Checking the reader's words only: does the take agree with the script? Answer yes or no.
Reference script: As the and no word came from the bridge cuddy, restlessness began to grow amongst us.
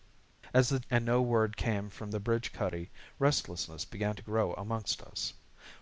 yes